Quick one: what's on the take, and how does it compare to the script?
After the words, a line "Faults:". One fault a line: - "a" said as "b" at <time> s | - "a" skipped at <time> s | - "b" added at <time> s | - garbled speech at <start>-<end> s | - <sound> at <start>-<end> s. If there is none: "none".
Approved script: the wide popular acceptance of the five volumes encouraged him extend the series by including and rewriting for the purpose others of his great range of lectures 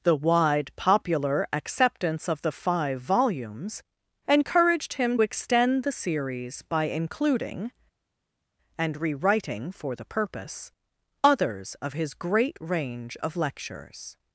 the wide popular acceptance of the five volumes encouraged him extend the series by including and rewriting for the purpose others of his great range of lectures
Faults:
none